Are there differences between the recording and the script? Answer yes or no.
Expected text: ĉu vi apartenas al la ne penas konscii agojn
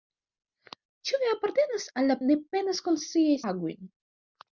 no